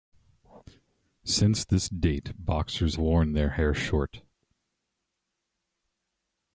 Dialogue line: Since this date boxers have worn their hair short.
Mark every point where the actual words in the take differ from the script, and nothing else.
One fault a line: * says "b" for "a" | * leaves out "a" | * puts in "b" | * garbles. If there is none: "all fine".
* leaves out "have"